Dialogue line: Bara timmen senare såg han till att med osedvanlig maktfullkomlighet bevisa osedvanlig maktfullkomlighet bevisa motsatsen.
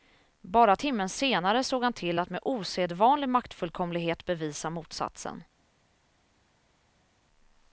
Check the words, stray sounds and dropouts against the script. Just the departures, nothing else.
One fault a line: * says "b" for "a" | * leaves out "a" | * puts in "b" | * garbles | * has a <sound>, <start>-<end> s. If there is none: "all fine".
* leaves out "osedvanlig maktfullkomlighet bevisa"